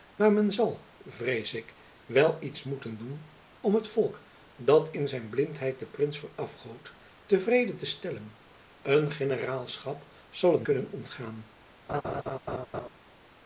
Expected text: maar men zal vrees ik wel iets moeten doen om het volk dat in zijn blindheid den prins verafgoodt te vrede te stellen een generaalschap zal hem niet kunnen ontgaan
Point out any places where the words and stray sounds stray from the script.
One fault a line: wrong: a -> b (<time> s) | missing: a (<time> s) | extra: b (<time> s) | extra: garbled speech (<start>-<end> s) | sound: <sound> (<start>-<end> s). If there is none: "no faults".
missing: niet (10.7 s)
sound: laugh (11.9-12.9 s)